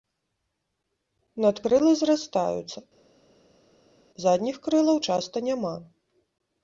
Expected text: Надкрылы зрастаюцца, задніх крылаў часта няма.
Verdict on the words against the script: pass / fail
pass